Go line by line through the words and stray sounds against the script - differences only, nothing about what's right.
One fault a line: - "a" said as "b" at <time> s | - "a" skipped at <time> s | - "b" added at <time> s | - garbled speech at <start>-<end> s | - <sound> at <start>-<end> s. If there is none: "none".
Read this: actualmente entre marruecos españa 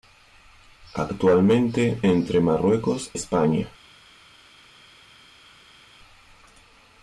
none